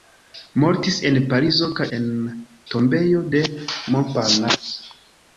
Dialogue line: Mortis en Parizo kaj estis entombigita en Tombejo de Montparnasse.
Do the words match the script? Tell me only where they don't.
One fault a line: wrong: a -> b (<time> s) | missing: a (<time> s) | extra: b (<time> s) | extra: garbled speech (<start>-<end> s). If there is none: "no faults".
missing: estis entombigita (1.9 s)